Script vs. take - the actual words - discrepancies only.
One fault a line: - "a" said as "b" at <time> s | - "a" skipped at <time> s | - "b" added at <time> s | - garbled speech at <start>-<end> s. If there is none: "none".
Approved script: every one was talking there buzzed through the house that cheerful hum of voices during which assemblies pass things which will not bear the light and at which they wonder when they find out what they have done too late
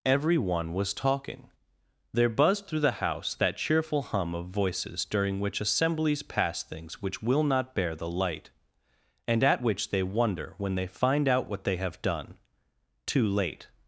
none